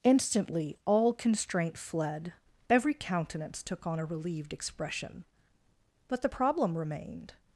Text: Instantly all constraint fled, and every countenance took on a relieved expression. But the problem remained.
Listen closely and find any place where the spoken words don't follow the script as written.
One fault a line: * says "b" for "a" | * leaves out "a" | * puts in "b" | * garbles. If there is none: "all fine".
* leaves out "and"